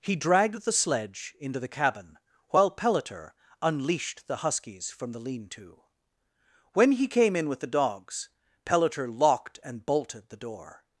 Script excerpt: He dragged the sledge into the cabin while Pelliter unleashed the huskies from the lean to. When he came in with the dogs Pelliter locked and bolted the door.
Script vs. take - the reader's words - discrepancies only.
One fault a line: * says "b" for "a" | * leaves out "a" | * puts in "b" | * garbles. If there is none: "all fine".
all fine